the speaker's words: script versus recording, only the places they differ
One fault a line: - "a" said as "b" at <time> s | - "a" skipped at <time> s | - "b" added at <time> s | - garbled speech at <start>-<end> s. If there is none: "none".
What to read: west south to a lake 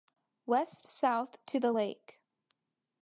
- "a" said as "the" at 1.6 s